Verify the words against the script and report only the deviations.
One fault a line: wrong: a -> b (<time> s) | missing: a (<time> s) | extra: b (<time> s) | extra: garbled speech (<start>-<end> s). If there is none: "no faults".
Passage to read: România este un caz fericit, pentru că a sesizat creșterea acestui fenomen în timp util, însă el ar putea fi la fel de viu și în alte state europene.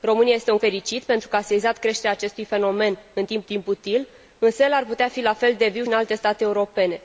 missing: caz (0.6 s)
extra: timp (3.4 s)
missing: și (5.8 s)